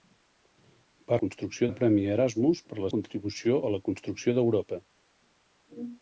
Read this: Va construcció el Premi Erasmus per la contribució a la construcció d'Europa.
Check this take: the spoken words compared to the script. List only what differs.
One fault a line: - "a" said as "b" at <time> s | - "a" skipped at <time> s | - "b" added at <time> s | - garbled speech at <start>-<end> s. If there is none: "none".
none